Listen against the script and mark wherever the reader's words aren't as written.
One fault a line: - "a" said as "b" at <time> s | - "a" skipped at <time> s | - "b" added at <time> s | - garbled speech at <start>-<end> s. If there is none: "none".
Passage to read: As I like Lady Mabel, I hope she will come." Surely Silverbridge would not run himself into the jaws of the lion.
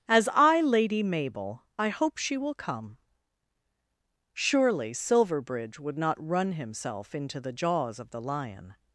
- "like" skipped at 0.6 s